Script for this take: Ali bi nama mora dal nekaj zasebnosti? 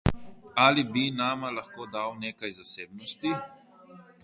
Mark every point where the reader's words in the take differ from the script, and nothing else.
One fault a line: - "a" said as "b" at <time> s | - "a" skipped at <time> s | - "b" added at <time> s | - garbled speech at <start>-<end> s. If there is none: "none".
- "mora" said as "lahko" at 1.6 s